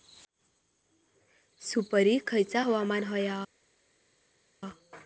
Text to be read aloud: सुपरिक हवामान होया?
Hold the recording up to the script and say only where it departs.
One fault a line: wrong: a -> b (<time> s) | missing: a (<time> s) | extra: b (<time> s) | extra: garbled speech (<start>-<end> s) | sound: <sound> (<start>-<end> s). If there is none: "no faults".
extra: खयचा (2.3 s)